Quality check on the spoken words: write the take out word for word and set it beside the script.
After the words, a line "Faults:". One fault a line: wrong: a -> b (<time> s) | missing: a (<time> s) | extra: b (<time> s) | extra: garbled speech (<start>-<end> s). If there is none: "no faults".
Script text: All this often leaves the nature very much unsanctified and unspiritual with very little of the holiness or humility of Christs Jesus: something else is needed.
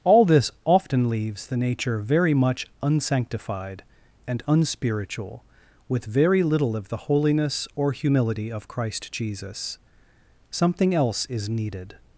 All this often leaves the nature very much unsanctified and unspiritual with very little of the holiness or humility of Christ Jesus: something else is needed.
Faults:
wrong: Christs -> Christ (8.7 s)